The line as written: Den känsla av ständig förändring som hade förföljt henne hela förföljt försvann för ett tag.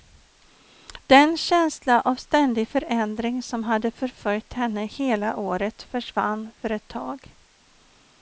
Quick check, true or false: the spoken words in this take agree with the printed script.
false